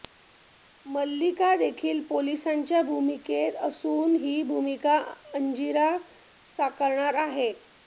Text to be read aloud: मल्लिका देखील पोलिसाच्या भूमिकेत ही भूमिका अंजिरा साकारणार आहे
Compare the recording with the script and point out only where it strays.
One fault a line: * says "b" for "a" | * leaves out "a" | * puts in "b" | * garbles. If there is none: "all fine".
* puts in "असून"